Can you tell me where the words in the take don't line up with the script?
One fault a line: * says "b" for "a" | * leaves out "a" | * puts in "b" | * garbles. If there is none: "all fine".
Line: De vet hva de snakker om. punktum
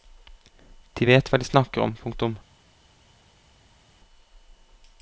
all fine